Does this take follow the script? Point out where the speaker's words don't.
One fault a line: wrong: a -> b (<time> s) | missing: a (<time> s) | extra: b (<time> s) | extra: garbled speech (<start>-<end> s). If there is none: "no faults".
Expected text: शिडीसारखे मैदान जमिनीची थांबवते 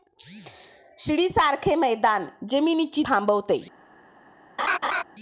no faults